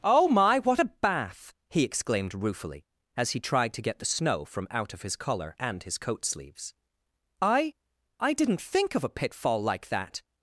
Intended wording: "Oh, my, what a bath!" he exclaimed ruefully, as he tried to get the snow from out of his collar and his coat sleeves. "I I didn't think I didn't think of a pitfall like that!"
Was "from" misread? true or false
false